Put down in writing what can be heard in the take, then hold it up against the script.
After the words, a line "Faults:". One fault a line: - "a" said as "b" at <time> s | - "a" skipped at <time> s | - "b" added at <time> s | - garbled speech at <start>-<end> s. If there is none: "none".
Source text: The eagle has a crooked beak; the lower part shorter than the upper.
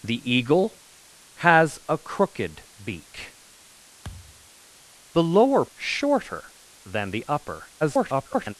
The eagle has a crooked beak; the lower shorter than the upper. [garbled]
Faults:
- "part" skipped at 5.7 s
- garbled speech at 7.8-8.5 s